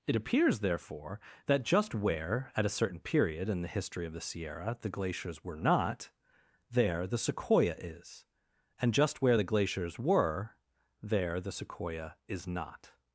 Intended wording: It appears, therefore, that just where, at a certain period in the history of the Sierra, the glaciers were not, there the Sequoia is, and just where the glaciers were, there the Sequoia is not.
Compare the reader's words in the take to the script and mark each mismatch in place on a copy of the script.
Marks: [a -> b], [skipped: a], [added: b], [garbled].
It appears, therefore, that just where, at a certain period in the history of the Sierra, the glaciers were not, there the Sequoia is, and just where the glaciers were, there the Sequoia is not.